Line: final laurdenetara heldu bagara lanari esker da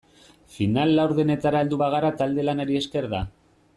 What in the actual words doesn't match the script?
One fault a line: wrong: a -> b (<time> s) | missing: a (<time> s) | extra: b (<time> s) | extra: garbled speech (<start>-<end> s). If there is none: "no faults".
extra: talde (2.2 s)